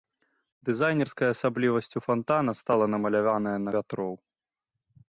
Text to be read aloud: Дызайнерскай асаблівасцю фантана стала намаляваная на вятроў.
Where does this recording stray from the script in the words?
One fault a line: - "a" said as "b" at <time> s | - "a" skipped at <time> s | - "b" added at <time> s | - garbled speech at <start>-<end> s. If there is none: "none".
none